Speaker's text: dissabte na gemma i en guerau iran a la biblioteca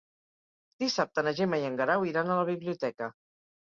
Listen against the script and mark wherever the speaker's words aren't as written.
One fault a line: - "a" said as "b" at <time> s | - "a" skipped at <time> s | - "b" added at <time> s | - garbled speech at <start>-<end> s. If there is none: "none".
none